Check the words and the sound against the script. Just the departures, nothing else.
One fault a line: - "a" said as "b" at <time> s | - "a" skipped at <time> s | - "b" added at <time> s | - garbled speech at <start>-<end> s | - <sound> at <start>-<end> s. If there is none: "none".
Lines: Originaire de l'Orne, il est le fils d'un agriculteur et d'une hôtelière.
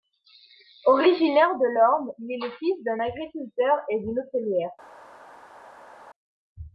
none